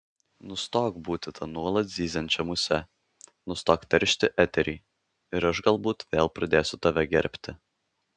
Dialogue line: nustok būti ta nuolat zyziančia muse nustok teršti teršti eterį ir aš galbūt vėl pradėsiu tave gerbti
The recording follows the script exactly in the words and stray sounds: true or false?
false